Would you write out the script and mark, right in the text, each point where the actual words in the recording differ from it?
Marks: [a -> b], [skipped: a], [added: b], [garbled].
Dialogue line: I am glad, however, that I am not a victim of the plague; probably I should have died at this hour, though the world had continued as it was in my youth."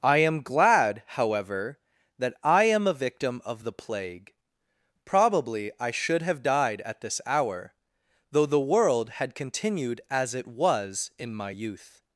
I am glad, however, that I am [skipped: not] a victim of the plague; probably I should have died at this hour, though the world had continued as it was in my youth."